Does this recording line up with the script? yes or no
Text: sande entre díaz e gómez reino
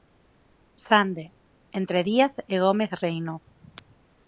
yes